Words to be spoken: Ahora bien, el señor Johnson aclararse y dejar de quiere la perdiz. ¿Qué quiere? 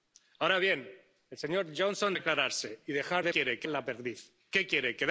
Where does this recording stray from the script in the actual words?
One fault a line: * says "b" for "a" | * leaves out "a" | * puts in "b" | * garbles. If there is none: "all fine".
all fine